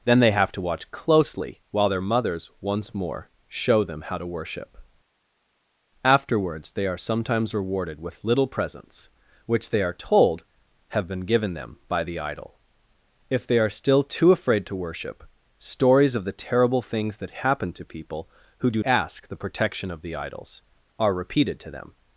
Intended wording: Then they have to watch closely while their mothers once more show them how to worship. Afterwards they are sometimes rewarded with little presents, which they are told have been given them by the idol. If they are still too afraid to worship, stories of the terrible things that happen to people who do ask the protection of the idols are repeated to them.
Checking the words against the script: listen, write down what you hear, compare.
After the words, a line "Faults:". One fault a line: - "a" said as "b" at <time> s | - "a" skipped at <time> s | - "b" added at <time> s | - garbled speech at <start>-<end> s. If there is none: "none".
Then they have to watch closely while their mothers once more show them how to worship. Afterwards they are sometimes rewarded with little presents, which they are told have been given them by the idol. If they are still too afraid to worship, stories of the terrible things that happen to people who do ask the protection of the idols are repeated to them.
Faults:
none